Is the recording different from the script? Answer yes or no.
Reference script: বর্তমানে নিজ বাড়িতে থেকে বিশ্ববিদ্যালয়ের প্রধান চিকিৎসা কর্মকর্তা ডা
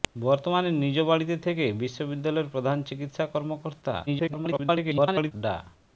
yes